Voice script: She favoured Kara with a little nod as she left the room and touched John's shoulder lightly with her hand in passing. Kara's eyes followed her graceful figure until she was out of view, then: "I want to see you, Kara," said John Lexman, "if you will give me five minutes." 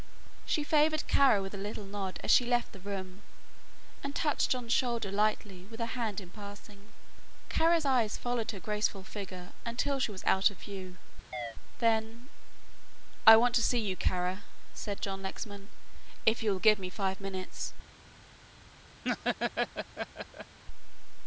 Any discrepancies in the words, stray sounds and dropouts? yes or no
yes